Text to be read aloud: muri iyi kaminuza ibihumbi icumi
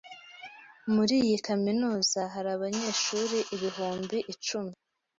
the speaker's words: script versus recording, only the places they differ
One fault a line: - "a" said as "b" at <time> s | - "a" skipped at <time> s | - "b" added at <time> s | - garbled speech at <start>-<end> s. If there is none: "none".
- "hari abanyeshuri" added at 2.3 s